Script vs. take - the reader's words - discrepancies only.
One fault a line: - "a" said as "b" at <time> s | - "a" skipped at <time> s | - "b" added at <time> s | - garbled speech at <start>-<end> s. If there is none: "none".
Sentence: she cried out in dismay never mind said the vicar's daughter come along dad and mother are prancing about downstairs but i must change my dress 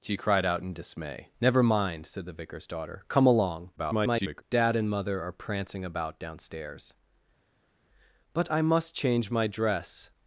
- garbled speech at 3.8-4.4 s